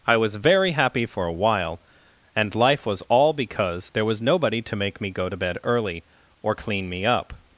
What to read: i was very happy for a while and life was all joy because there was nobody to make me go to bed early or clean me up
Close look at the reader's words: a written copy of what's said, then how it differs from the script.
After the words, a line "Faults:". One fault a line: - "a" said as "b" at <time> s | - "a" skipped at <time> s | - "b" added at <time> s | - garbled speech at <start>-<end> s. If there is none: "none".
i was very happy for a while and life was all because there was nobody to make me go to bed early or clean me up
Faults:
- "joy" skipped at 3.3 s